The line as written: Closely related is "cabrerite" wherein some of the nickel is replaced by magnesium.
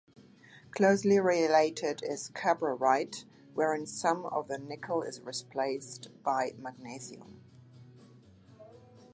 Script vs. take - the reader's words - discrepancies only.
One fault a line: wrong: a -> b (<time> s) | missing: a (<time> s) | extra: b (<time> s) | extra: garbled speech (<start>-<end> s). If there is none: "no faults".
no faults